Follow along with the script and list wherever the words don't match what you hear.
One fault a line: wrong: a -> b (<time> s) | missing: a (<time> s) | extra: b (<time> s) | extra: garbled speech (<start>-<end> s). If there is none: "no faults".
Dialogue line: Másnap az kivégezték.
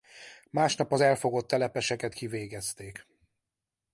extra: elfogott telepeseket (1.0 s)